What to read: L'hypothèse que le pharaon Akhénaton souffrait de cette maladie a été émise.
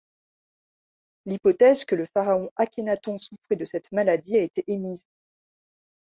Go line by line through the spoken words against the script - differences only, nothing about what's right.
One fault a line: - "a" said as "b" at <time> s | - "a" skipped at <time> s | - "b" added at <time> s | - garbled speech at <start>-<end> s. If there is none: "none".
none